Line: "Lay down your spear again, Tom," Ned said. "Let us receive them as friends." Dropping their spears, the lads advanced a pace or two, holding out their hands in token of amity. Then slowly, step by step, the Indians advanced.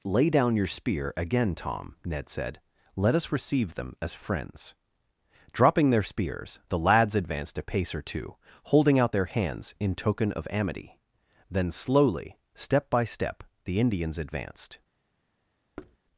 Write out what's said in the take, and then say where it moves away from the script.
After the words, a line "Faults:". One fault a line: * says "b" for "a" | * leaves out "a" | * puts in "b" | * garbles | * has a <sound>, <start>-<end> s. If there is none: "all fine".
"Lay down your spear again, Tom," Ned said. "Let us receive them as friends." Dropping their spears, the lads advanced a pace or two, holding out their hands in token of amity. Then slowly, step by step, the Indians advanced.
Faults:
* has a thud, 15.8-16.0 s